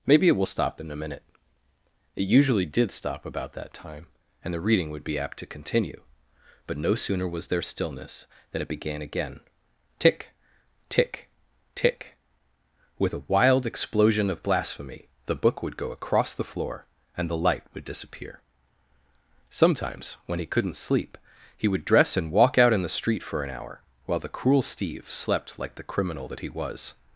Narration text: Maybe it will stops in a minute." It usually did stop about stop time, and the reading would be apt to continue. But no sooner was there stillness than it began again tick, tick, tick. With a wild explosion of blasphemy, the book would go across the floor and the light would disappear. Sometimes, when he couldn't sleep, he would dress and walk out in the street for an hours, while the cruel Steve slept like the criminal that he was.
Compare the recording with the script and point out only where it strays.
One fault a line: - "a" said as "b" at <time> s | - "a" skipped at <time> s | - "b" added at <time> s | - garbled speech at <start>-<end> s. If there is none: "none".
- "stops" said as "stop" at 0.5 s
- "stop" said as "that" at 3.5 s
- "hours" said as "hour" at 23.5 s